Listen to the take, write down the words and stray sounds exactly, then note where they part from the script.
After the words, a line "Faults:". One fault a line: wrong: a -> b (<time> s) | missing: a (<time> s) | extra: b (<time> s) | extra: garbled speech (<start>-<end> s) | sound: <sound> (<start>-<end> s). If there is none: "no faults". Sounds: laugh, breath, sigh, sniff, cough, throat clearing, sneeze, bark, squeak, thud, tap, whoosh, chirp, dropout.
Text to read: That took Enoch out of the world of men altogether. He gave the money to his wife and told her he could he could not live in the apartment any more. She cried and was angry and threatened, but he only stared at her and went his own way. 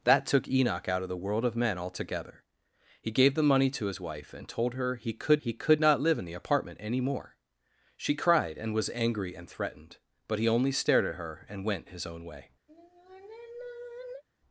That took Enoch out of the world of men altogether. He gave the money to his wife and told her he could he could not live in the apartment any more. She cried and was angry and threatened, but he only stared at her and went his own way.
Faults:
sound: sigh (12.7-14.2 s)